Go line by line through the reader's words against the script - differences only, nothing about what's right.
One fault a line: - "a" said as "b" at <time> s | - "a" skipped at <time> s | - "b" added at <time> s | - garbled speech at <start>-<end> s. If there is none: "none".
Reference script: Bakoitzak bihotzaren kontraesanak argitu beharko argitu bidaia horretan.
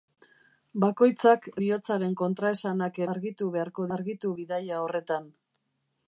none